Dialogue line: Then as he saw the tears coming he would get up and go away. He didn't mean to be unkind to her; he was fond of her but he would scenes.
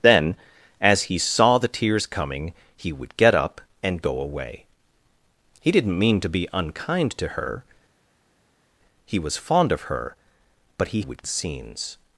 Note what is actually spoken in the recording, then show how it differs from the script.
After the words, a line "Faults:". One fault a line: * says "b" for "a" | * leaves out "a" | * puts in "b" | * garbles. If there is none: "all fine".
Then as he saw the tears coming he would get up and go away. He didn't mean to be unkind to her; he was fond of her but he would scenes.
Faults:
all fine